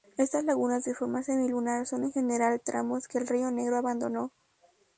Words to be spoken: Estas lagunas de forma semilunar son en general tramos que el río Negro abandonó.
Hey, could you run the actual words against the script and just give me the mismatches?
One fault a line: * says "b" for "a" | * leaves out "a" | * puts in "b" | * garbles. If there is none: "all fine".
all fine